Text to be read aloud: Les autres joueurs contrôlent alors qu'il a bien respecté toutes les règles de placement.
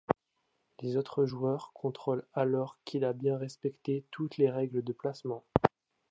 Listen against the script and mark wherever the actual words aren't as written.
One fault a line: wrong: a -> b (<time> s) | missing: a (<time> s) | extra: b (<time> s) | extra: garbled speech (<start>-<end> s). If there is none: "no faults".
no faults